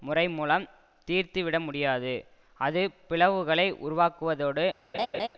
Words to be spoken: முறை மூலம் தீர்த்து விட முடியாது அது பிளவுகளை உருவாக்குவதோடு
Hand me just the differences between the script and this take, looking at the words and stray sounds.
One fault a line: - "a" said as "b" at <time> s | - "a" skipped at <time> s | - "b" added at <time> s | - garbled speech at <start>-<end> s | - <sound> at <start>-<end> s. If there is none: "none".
- laugh at 4.9-5.3 s